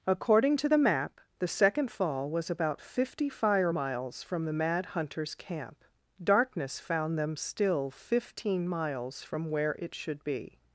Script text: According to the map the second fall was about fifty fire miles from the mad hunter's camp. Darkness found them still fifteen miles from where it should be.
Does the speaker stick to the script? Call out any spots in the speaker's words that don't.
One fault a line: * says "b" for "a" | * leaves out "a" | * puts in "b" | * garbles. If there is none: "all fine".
all fine